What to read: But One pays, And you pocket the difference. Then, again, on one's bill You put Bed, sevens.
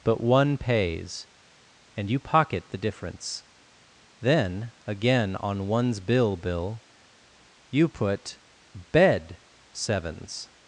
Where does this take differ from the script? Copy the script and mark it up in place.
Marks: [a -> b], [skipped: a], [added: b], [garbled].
But One pays, And you pocket the difference. Then, again, on one's bill [added: bill] You put Bed, sevens.